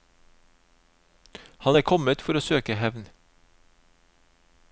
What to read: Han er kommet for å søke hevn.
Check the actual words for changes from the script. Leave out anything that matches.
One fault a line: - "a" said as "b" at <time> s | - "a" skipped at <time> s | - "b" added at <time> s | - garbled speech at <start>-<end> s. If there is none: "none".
none